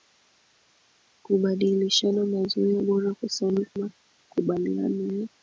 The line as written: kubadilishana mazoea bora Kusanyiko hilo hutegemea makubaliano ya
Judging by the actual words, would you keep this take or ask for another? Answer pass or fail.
fail